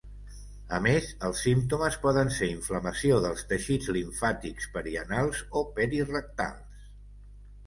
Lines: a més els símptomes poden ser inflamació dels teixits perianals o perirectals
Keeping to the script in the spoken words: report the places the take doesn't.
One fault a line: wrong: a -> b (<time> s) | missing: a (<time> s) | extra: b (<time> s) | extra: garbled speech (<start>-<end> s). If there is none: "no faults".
extra: limfàtics (4.0 s)